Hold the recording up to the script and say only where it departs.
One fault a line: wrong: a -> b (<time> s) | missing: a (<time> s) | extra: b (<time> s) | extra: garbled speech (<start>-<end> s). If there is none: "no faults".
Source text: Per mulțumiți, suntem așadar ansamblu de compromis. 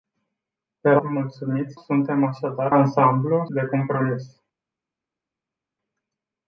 no faults